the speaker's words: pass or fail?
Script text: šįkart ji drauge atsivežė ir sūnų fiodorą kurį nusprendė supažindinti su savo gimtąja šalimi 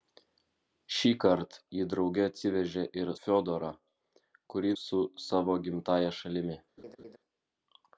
fail